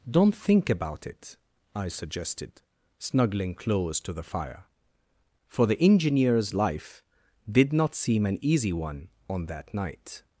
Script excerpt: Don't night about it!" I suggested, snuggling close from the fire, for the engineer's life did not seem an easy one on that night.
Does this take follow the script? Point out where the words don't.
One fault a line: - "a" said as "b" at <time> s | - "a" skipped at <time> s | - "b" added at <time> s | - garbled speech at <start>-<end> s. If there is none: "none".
- "night" said as "think" at 0.3 s
- "from" said as "to" at 4.0 s